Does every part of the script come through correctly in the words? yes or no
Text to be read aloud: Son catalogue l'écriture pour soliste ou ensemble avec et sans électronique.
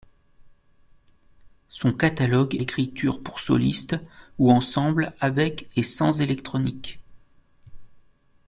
yes